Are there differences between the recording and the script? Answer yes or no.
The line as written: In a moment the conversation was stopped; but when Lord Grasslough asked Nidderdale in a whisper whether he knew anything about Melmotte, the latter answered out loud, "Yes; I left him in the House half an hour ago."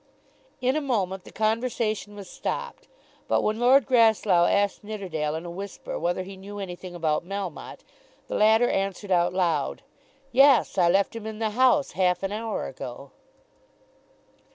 no